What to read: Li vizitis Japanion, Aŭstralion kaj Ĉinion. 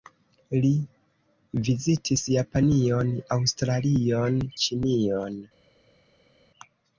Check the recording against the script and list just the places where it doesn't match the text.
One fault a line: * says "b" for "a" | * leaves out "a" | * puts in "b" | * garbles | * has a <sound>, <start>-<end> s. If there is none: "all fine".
* leaves out "kaj"